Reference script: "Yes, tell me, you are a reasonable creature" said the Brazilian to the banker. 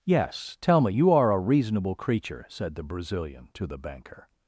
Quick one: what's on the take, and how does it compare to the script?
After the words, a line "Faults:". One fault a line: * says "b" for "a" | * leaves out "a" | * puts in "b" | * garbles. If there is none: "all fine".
"Yes, tell me, you are a reasonable creature" said the Brazilian to the banker.
Faults:
all fine